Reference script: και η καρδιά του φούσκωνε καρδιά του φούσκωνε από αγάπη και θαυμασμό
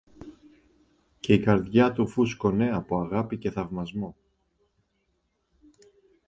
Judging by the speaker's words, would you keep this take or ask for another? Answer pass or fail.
fail